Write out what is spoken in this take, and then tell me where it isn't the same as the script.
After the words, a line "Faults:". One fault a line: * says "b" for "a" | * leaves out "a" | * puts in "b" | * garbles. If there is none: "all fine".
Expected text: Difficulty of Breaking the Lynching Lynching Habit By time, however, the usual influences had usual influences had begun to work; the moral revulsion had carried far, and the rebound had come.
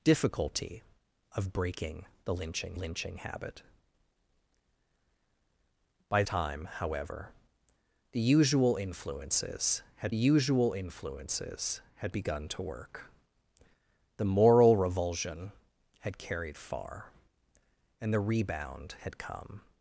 Difficulty of Breaking the Lynching Lynching Habit By time, however, the usual influences had usual influences had begun to work; the moral revulsion had carried far, and the rebound had come.
Faults:
all fine